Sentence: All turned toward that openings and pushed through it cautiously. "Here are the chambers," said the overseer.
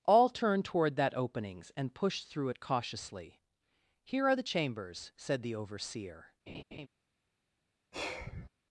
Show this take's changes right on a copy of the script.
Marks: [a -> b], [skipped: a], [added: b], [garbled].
All turned toward that openings and pushed through it cautiously. "Here are the chambers," said the overseer.